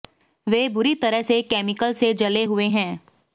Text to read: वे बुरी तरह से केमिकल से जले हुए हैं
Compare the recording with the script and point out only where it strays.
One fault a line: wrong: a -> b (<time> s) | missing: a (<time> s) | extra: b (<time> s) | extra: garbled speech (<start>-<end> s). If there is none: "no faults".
no faults